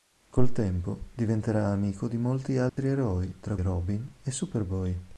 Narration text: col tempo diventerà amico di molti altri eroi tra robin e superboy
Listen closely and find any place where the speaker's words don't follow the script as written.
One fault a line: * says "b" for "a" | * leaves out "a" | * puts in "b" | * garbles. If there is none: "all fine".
all fine